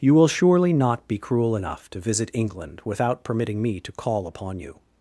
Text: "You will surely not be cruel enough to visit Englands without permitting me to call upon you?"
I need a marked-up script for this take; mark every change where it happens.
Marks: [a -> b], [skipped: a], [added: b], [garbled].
"You will surely not be cruel enough to visit [Englands -> England] without permitting me to call upon you?"